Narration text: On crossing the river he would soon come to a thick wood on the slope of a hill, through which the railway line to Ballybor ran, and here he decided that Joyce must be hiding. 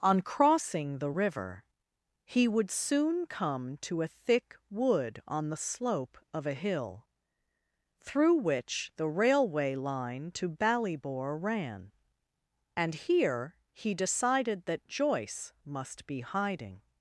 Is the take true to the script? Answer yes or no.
yes